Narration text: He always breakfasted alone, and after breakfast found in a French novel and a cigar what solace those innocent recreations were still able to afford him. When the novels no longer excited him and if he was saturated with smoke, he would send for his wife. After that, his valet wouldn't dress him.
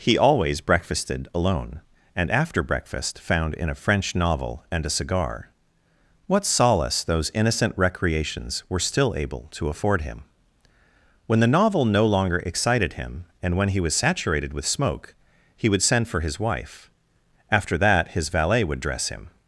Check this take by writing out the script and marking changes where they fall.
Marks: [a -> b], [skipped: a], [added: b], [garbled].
He always breakfasted alone, and after breakfast found in a French novel and a cigar what solace those innocent recreations were still able to afford him. When the [novels -> novel] no longer excited him and [if -> when] he was saturated with smoke, he would send for his wife. After that, his valet [wouldn't -> would] dress him.